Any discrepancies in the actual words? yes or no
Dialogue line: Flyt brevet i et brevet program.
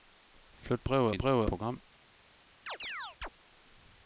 no